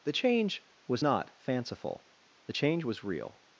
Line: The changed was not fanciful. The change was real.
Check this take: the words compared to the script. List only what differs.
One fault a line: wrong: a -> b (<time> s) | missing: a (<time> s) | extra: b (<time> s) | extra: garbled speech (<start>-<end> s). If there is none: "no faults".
wrong: changed -> change (0.1 s)